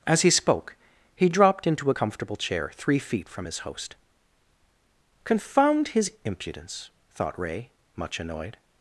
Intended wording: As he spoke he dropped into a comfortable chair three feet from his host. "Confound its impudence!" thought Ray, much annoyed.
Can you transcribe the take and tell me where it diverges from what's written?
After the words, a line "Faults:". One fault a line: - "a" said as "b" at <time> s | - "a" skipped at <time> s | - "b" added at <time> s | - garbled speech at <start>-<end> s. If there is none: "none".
As he spoke he dropped into a comfortable chair three feet from his host. "Confound his impudence!" thought Ray, much annoyed.
Faults:
- "its" said as "his" at 5.9 s